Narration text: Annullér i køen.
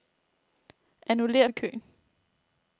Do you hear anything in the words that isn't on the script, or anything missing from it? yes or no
no